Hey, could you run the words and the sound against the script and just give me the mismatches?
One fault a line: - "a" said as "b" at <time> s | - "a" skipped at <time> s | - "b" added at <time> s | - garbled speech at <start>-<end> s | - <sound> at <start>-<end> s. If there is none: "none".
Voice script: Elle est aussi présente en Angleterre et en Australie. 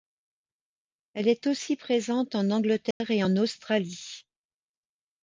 - dropout at 2.9-3.0 s